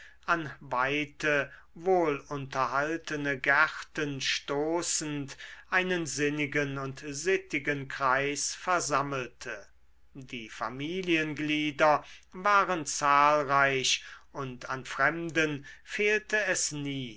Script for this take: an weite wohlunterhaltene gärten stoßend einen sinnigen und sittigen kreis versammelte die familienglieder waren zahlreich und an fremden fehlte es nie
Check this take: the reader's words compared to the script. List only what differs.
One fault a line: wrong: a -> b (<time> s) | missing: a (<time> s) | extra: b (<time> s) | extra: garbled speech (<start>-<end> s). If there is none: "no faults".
no faults